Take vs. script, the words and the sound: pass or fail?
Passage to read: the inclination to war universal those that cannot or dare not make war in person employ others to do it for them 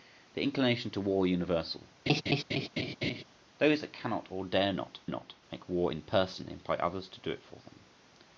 fail